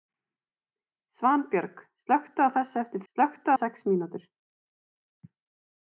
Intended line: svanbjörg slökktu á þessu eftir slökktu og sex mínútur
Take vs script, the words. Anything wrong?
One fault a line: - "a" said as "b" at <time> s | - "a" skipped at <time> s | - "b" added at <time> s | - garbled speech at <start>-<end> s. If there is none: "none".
none